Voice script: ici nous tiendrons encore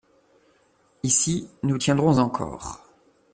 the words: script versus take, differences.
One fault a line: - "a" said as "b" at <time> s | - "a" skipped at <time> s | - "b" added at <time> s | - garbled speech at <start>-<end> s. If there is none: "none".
none